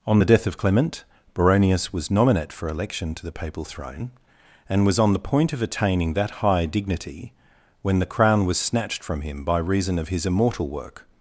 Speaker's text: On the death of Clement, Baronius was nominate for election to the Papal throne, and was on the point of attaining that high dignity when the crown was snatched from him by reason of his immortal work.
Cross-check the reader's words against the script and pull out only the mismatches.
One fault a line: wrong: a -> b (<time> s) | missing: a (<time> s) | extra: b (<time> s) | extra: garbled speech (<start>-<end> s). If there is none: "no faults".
no faults